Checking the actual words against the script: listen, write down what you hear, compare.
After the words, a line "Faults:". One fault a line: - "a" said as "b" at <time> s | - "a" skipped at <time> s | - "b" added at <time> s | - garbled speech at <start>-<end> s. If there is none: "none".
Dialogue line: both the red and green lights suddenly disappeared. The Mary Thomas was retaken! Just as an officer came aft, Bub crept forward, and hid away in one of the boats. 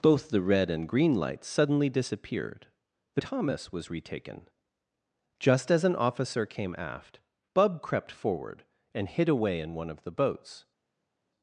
both the red and green lights suddenly disappeared. The Thomas was retaken! Just as an officer came aft, Bub crept forward, and hid away in one of the boats.
Faults:
- "Mary" skipped at 3.2 s